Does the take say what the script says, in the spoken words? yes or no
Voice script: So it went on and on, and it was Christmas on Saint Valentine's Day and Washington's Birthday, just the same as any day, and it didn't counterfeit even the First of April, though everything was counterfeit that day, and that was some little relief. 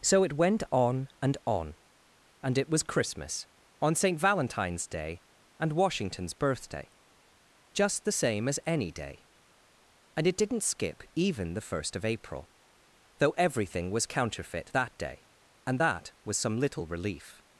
no